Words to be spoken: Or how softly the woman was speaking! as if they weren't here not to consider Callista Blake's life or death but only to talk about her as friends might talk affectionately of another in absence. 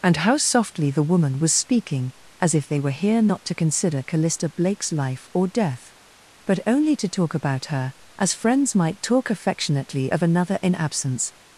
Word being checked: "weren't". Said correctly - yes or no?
no